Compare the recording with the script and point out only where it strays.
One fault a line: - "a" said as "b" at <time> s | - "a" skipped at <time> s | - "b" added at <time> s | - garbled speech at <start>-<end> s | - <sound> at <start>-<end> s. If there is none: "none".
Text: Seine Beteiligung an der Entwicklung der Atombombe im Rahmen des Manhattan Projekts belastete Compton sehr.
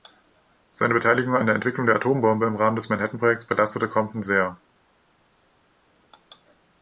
none